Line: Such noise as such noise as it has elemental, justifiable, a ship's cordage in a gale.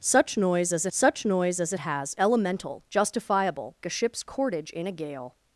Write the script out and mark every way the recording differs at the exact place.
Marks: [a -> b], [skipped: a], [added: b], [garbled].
Such noise as such noise as it has elemental, justifiable, a ship's cordage in a gale.